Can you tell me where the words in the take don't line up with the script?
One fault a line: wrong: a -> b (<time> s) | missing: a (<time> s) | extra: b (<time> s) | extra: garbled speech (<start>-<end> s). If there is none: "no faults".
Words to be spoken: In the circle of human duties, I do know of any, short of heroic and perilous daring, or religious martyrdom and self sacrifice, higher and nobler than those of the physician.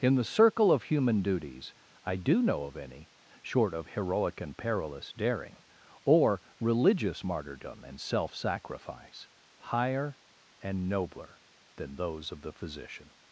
no faults